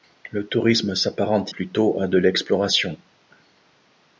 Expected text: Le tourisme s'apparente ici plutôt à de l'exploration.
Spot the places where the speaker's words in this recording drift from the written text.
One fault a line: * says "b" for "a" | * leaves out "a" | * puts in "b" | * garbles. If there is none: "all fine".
* leaves out "ici"